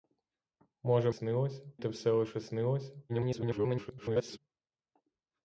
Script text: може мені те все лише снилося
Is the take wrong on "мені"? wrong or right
wrong